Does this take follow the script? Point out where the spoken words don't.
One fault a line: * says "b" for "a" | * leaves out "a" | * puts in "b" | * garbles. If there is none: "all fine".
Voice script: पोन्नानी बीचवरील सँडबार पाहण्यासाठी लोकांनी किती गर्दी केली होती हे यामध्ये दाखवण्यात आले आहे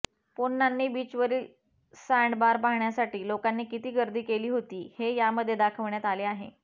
all fine